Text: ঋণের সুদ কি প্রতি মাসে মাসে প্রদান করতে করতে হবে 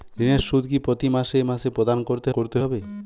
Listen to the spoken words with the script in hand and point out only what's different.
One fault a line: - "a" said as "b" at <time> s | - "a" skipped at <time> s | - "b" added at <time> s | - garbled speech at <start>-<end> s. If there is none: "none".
none